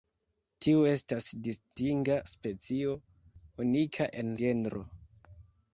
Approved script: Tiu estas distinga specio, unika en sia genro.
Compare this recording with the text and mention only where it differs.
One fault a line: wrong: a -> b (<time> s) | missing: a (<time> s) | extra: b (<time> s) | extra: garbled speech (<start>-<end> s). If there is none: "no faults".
missing: sia (4.3 s)